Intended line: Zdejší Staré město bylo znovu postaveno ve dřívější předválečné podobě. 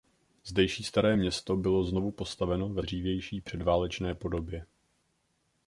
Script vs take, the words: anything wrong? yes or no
no